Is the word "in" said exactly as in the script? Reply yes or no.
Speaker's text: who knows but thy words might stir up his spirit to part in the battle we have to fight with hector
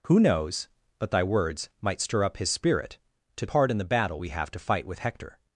yes